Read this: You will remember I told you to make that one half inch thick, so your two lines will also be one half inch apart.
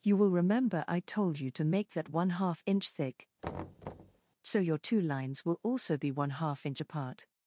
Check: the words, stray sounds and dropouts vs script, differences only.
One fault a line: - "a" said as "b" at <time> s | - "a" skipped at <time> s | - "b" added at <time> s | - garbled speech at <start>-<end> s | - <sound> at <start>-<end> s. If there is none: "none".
- thud at 3.4-4.2 s